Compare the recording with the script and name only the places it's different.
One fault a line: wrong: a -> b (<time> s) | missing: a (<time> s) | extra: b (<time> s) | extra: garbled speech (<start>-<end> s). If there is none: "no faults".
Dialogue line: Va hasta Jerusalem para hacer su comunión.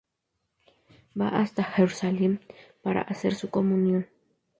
no faults